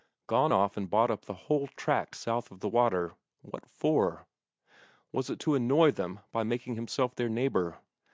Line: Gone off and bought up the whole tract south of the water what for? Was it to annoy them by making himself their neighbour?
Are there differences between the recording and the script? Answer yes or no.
no